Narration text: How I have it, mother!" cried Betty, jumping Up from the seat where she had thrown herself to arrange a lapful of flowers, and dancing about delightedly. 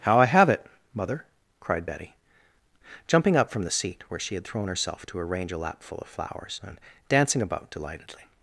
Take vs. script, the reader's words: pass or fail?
pass